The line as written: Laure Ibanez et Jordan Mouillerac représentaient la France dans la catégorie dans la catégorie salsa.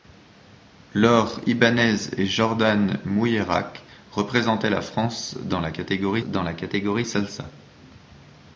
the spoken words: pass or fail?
pass